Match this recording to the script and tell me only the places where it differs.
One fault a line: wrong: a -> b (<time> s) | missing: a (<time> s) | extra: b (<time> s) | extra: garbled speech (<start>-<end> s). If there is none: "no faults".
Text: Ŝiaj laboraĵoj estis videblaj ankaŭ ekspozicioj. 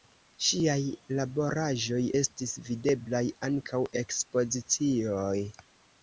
no faults